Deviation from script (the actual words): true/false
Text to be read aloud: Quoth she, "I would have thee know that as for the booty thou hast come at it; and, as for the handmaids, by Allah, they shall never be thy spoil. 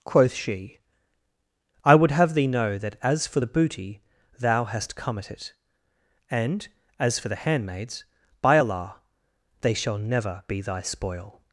false